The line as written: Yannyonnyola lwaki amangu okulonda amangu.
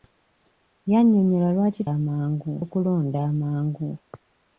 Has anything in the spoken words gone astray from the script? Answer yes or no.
no